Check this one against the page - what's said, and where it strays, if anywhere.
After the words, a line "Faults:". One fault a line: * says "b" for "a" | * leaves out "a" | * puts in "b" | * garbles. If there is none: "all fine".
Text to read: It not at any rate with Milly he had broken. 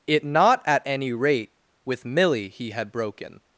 It not at any rate with Milly he had broken.
Faults:
all fine